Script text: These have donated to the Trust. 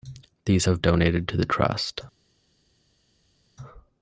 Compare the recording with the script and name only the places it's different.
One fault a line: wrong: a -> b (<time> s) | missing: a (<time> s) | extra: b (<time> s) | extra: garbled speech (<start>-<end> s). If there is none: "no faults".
no faults